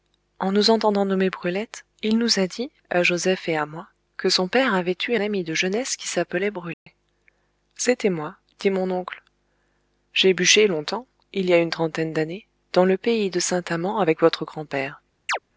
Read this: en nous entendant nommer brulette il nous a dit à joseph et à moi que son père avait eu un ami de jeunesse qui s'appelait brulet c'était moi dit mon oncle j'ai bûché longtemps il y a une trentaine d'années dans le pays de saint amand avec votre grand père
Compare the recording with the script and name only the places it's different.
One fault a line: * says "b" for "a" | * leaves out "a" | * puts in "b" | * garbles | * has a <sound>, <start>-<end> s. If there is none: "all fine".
* leaves out "un"
* has a dropout, 6.7-6.9 s
* has a chirp, 15.3-15.4 s